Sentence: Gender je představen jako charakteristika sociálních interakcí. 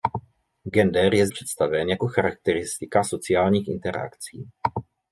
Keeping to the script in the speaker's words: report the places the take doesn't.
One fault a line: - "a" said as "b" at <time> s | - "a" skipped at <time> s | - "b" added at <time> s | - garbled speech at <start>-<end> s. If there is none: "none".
none